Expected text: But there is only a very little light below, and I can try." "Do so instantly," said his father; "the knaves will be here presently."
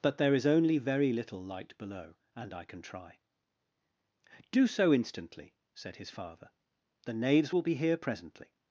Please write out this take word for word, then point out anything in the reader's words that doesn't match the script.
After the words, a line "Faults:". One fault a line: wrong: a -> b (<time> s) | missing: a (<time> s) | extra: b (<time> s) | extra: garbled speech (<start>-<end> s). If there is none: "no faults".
But there is only very little light below, and I can try." "Do so instantly," said his father; "the knaves will be here presently."
Faults:
missing: a (0.8 s)